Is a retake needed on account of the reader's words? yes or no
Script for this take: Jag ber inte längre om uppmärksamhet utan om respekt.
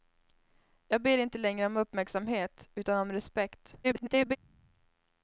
yes